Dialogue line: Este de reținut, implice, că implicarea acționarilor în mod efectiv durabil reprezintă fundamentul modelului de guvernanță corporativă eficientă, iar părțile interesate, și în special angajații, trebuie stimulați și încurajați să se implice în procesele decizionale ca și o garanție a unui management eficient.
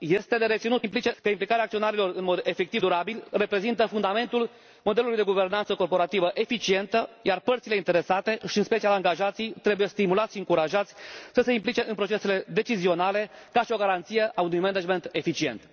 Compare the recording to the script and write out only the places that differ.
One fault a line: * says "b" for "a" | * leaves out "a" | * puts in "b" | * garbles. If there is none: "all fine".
all fine